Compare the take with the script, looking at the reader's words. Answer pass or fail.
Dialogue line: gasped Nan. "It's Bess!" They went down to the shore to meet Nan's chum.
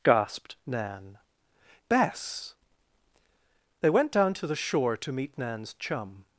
fail